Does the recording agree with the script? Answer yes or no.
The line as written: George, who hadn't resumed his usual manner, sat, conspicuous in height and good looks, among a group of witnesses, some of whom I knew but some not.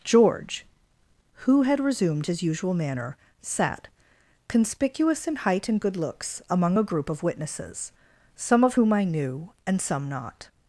no